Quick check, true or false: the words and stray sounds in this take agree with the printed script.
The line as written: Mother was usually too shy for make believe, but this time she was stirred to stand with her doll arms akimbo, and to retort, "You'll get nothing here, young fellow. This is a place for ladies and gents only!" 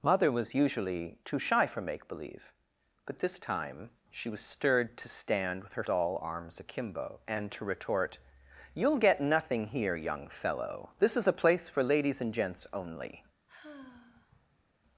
false